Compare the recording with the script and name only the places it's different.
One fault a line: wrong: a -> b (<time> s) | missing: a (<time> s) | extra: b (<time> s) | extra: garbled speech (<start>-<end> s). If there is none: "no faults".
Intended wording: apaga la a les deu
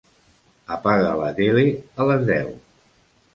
extra: tele (1.4 s)